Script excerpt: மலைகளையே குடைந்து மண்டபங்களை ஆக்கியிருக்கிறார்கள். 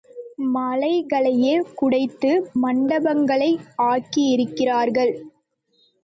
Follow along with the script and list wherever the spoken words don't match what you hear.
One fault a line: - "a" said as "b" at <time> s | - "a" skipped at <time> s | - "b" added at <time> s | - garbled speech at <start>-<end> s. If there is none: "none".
none